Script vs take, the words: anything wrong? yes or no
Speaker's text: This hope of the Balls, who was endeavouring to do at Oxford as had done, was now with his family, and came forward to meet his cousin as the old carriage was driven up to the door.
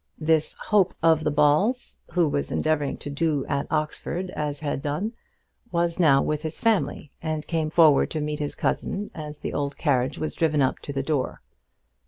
no